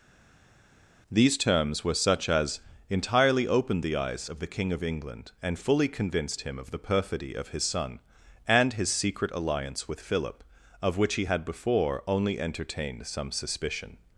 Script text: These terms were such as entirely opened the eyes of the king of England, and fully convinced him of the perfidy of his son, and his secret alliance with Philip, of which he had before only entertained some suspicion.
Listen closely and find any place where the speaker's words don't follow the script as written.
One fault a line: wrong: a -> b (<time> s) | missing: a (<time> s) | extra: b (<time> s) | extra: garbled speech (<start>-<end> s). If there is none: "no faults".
no faults